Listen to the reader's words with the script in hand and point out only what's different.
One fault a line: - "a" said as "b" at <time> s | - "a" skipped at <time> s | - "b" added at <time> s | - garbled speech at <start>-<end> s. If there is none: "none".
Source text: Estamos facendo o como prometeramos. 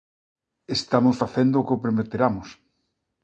- "como" said as "que" at 1.7 s